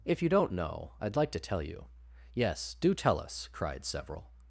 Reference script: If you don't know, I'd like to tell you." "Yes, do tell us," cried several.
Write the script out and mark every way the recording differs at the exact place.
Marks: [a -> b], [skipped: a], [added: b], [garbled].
If you don't know, I'd like to tell you." "Yes, do tell us," cried several.